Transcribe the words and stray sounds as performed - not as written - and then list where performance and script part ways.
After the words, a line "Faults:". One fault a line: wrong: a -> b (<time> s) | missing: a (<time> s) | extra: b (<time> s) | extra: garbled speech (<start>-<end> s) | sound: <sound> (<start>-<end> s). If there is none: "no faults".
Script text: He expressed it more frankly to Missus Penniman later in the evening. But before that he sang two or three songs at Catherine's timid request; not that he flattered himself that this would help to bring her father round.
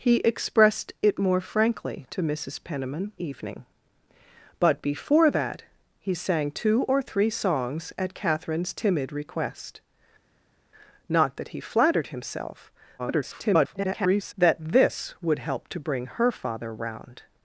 He expressed it more frankly to Missus Penniman evening. But before that he sang two or three songs at Catherine's timid request; not that he flattered himself [garbled] that this would help to bring her father round.
Faults:
missing: later in the (3.1 s)
extra: garbled speech (13.0-14.3 s)